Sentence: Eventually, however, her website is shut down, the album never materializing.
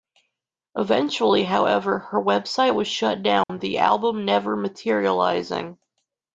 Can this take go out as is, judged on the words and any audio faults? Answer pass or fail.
fail